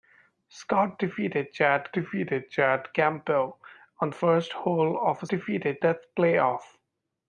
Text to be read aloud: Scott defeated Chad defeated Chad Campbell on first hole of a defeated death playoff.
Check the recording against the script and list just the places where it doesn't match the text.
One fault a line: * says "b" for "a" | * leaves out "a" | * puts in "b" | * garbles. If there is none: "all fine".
all fine